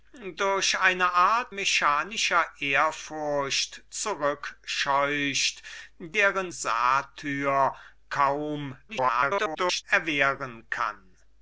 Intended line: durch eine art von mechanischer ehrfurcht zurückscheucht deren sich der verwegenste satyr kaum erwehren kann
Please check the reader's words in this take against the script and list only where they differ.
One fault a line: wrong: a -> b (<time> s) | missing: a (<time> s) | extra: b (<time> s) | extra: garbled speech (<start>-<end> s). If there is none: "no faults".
missing: von (1.6 s)
missing: sich der verwegenste (6.5 s)
extra: garbled speech (8.9-9.8 s)